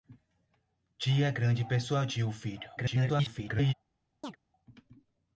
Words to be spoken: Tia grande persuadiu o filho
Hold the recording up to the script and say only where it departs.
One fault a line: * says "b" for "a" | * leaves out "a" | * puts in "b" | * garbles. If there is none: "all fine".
* garbles